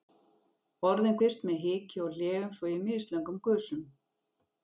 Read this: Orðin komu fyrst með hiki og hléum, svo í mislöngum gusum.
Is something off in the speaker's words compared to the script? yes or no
yes